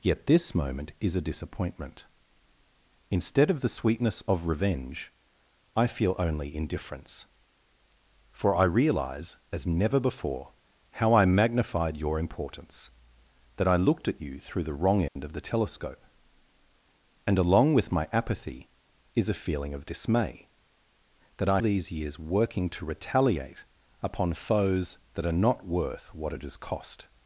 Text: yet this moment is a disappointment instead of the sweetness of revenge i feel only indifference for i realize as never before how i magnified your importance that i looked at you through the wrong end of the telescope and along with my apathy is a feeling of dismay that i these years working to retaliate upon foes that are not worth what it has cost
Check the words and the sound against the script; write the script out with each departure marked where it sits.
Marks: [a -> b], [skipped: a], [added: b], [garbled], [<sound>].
yet this moment is a disappointment instead of the sweetness of revenge i feel only indifference for i realize as never before how i magnified your importance that i looked at you through the wrong end [dropout] of the telescope and along with my apathy is a feeling of dismay that i these years working to retaliate upon foes that are not worth what it has cost